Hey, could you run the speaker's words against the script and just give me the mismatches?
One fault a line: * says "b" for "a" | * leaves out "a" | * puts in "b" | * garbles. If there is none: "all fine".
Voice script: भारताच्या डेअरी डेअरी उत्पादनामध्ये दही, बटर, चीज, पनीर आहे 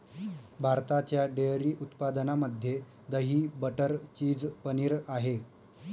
* leaves out "डेअरी"